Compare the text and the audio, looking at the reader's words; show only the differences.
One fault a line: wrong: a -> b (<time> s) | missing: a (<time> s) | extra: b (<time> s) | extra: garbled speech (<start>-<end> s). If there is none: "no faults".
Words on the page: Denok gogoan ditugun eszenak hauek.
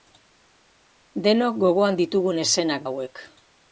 no faults